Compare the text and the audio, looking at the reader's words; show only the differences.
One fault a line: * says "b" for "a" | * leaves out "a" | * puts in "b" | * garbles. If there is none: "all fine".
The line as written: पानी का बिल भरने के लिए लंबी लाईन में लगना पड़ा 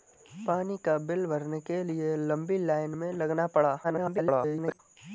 * garbles